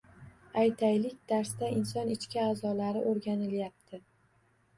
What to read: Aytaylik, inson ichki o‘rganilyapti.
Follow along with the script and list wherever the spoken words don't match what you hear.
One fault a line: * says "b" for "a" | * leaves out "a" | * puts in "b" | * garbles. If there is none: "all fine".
* puts in "darsda"
* puts in "a'zolari"